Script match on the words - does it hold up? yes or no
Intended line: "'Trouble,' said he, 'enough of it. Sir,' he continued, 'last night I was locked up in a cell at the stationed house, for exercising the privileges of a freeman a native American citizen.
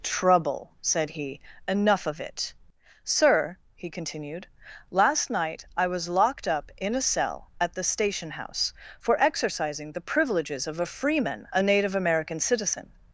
no